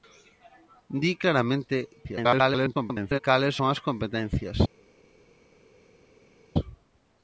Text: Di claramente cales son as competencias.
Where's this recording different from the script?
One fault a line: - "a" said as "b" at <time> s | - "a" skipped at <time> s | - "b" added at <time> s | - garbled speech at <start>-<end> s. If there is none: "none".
- garbled speech at 2.0-3.2 s